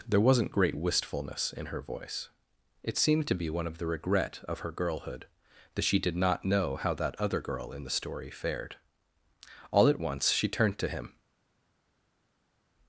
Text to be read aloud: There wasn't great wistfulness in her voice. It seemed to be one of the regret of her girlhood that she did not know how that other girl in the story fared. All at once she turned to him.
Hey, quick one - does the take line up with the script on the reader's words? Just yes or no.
yes